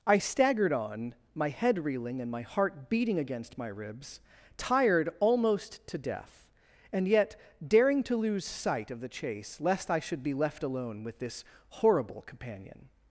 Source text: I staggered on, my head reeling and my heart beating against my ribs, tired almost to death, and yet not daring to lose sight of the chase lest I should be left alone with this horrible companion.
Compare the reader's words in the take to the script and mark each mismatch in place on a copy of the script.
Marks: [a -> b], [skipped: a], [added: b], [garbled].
I staggered on, my head reeling and my heart beating against my ribs, tired almost to death, and yet [skipped: not] daring to lose sight of the chase lest I should be left alone with this horrible companion.